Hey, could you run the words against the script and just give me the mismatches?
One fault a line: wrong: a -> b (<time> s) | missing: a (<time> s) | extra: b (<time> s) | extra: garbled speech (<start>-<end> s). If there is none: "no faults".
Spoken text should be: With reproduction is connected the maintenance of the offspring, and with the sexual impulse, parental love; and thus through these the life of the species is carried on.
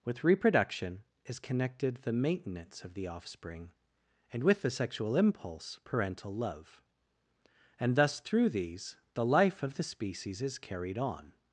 no faults